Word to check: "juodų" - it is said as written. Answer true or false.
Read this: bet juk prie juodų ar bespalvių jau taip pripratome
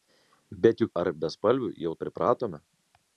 false